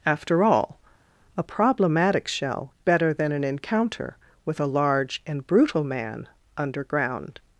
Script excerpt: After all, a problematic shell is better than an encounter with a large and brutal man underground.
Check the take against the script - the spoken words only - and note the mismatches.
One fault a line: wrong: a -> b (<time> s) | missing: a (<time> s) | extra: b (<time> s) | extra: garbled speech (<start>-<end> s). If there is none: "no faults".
missing: is (2.7 s)